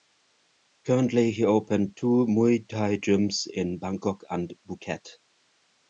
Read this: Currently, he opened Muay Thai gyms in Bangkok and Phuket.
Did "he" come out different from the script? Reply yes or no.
no